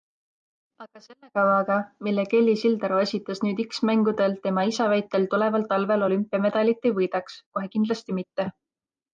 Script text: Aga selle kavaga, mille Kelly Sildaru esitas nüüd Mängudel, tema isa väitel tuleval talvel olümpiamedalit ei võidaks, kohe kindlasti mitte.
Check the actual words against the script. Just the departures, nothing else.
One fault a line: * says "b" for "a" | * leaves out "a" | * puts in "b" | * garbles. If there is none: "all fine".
* puts in "X"